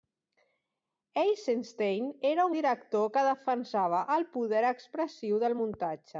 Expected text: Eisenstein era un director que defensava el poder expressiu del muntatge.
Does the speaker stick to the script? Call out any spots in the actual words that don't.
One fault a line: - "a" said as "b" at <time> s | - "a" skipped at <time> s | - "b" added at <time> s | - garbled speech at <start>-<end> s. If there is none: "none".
none